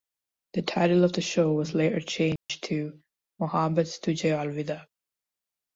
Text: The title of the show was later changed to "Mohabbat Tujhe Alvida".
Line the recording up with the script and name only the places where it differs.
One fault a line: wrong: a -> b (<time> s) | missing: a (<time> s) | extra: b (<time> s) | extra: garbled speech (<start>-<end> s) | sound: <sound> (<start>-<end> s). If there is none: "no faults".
sound: dropout (2.4-2.5 s)